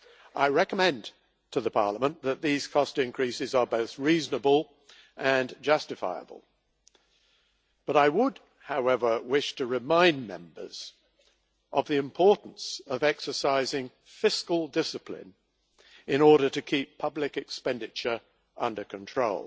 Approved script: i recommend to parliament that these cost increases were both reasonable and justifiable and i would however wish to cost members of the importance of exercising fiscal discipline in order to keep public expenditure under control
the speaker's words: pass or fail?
fail